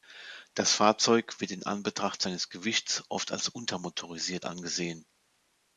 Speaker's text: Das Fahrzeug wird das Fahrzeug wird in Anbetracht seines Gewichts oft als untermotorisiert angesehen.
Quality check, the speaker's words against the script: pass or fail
fail